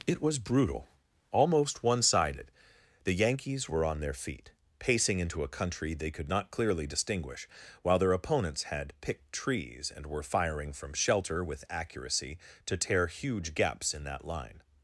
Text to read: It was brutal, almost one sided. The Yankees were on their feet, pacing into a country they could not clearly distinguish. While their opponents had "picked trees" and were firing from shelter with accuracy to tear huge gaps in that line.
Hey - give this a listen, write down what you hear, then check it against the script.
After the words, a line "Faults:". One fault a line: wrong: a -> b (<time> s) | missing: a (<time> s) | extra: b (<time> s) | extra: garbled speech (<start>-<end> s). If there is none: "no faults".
It was brutal, almost one sided. The Yankees were on their feet, pacing into a country they could not clearly distinguish. While their opponents had "picked trees" and were firing from shelter with accuracy to tear huge gaps in that line.
Faults:
no faults